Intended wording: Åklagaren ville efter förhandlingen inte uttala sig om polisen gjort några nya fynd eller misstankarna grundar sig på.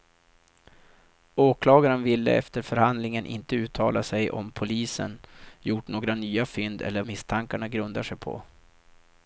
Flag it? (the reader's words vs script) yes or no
no